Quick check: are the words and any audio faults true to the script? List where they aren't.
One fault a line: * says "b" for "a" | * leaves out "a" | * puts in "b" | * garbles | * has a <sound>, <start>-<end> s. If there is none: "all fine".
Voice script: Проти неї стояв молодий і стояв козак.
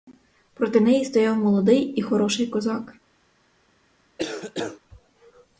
* says "хороший" for "стояв"
* has a cough, 4.2-4.8 s